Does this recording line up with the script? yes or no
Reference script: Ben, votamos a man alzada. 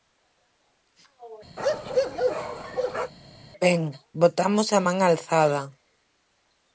yes